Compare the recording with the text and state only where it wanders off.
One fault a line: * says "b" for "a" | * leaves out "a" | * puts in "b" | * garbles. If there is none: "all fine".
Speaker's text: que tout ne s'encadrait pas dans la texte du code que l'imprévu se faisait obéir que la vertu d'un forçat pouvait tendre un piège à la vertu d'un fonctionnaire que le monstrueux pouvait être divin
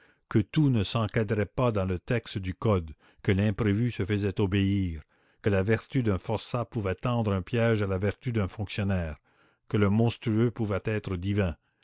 * says "le" for "la"